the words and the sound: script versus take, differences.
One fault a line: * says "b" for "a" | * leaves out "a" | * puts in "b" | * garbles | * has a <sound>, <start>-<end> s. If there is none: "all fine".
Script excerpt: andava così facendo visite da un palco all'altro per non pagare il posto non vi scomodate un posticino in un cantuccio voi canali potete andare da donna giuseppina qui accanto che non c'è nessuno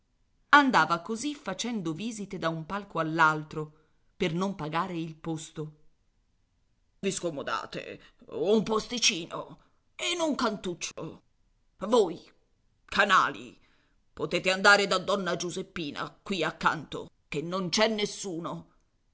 * leaves out "non"
* has a dropout, 10.9-11.0 s